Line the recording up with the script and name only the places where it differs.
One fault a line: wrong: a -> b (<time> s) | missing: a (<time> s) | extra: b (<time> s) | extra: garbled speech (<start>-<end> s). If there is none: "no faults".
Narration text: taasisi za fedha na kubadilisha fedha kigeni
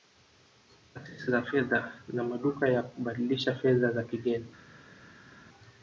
extra: maduka ya (2.2 s)
extra: za (3.9 s)